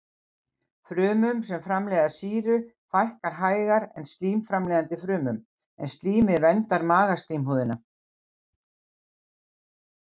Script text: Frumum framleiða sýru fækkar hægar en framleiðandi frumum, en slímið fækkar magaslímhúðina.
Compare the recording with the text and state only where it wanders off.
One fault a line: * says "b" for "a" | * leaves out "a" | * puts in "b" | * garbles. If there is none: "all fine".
* puts in "sem"
* puts in "slím"
* says "verndar" for "fækkar"